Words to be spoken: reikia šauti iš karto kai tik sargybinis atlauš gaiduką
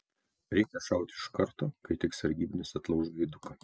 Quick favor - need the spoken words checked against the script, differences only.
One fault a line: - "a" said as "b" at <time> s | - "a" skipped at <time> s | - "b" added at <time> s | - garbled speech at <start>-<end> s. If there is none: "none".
none